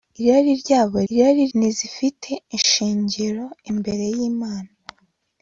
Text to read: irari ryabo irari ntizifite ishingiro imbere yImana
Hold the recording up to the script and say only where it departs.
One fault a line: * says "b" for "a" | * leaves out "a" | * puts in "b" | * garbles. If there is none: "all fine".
all fine